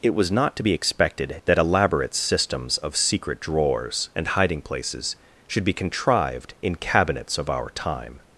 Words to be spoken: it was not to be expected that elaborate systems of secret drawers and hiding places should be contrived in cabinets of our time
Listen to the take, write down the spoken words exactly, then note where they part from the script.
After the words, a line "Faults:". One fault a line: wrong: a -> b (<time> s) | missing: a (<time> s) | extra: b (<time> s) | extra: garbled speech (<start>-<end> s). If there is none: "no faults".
it was not to be expected that elaborate systems of secret drawers and hiding places should be contrived in cabinets of our time
Faults:
no faults